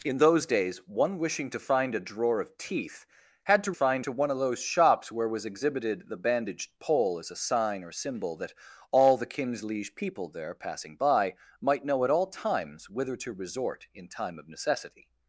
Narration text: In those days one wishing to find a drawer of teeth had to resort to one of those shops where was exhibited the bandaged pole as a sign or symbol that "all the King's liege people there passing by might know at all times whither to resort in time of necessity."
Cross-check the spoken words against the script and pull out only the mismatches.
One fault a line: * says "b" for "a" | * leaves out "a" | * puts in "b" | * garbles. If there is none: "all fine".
* says "find" for "resort"